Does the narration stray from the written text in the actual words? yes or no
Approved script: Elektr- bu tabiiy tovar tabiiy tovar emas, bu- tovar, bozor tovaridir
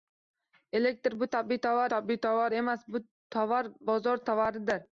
no